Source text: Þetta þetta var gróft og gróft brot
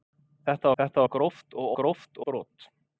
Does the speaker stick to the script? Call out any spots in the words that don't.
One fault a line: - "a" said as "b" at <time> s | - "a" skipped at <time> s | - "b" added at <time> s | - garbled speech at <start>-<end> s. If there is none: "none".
none